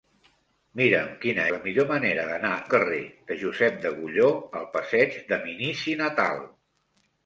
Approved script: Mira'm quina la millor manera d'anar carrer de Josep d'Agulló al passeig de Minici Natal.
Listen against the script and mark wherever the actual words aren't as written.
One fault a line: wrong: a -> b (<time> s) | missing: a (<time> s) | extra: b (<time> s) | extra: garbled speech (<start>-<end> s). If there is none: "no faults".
no faults